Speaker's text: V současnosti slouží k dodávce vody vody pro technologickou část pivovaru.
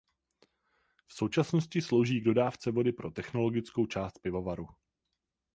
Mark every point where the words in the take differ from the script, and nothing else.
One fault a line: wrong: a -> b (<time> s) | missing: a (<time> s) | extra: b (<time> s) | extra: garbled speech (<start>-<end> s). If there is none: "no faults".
missing: vody (2.9 s)